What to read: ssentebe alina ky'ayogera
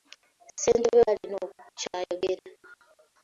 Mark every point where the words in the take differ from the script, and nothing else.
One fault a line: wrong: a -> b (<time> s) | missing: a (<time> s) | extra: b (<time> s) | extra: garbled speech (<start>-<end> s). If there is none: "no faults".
no faults